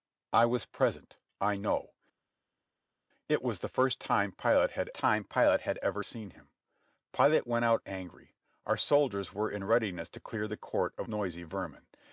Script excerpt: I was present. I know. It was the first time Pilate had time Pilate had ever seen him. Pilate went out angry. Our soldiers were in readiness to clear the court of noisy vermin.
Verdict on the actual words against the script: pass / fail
pass